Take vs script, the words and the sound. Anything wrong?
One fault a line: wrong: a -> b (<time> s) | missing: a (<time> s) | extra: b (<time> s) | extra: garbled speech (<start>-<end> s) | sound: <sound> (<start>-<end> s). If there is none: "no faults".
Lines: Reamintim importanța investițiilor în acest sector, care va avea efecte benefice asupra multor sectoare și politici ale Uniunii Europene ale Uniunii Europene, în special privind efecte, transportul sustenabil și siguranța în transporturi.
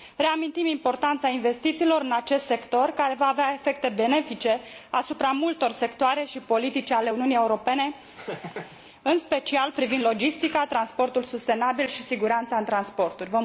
missing: ale Uniunii Europene (7.9 s)
sound: laugh (8.2-8.8 s)
wrong: efecte -> logistica (10.0 s)